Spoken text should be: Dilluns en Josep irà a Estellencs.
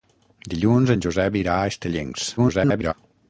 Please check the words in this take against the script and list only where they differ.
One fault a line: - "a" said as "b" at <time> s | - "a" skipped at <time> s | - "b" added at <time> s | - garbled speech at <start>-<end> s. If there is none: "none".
- garbled speech at 2.4-2.9 s